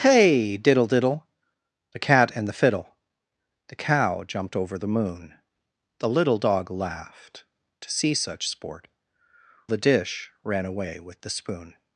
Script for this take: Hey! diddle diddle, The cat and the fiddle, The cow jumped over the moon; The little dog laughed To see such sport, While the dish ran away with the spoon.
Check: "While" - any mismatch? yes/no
yes